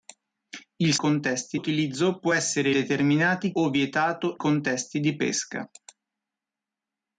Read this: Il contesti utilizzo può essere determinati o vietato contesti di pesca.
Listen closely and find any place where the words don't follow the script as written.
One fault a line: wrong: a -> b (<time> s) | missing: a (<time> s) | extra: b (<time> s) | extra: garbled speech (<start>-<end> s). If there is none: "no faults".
no faults